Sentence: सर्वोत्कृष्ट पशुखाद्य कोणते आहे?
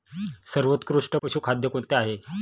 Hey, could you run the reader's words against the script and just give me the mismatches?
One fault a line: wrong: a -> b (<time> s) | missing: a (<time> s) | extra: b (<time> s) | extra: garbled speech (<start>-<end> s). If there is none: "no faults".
no faults